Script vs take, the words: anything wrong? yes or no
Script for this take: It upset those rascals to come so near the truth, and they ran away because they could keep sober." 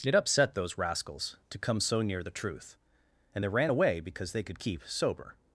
no